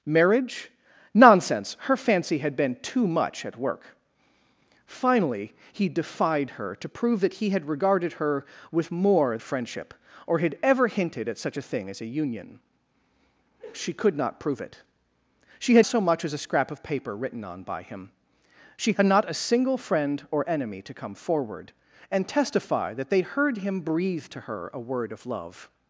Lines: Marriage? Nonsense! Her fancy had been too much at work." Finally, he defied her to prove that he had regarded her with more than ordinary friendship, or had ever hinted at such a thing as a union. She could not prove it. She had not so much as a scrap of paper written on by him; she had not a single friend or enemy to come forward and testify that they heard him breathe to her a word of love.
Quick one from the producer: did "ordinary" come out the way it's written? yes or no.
no